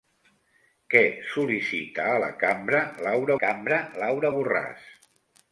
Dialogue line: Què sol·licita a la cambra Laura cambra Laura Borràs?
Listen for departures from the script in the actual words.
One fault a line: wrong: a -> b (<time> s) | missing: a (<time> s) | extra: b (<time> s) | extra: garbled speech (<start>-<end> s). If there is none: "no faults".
no faults